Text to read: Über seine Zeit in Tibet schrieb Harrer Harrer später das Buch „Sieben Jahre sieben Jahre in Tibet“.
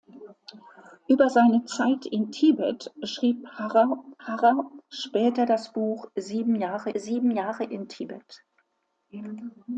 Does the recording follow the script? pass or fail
pass